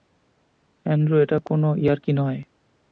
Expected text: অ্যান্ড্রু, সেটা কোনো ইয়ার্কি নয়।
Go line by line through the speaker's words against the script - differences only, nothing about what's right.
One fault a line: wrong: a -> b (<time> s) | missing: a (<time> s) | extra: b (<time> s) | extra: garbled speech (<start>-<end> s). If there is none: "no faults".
wrong: সেটা -> এটা (1.2 s)